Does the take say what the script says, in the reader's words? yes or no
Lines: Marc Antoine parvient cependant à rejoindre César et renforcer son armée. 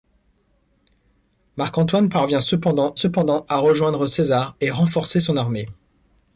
no